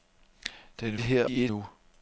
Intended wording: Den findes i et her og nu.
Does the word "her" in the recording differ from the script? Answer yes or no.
yes